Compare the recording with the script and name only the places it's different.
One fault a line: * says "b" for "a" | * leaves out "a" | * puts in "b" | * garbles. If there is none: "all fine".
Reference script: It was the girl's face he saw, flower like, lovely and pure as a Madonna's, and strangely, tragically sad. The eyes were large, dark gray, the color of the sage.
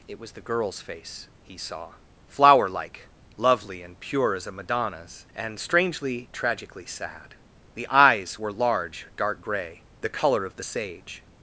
all fine